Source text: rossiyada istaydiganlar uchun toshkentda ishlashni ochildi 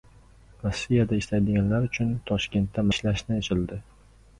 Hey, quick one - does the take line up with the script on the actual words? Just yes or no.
yes